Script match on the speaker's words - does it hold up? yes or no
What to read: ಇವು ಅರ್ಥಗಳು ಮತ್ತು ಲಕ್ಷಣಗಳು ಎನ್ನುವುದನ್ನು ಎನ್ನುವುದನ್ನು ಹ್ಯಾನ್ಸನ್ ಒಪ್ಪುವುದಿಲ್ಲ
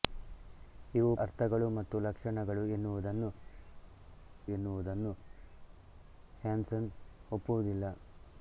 yes